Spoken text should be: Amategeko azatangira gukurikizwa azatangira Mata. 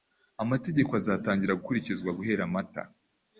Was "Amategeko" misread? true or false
false